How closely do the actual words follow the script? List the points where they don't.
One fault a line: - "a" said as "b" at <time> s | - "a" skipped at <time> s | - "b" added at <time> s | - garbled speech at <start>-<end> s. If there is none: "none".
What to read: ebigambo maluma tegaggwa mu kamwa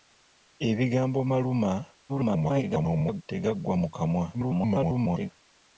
- garbled speech at 2.1-3.2 s
- garbled speech at 4.3-5.3 s